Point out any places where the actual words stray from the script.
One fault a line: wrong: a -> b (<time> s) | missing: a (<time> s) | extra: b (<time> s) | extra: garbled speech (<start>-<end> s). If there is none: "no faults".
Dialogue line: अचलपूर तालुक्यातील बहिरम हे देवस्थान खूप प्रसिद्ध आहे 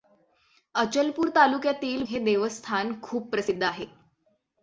missing: बहिरम (2.0 s)